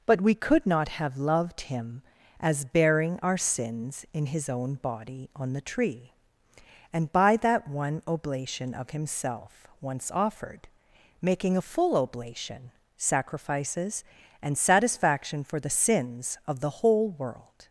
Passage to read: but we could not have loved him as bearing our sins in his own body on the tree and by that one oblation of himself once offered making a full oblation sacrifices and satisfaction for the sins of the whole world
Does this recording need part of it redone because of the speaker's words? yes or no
no